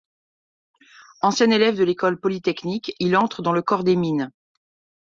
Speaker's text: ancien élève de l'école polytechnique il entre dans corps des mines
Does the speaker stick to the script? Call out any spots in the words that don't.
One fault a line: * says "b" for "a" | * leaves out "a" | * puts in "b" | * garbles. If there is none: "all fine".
* puts in "le"